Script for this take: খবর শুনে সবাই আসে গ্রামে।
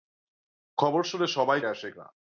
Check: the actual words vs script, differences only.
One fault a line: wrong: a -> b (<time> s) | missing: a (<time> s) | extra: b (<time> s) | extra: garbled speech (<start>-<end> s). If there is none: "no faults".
no faults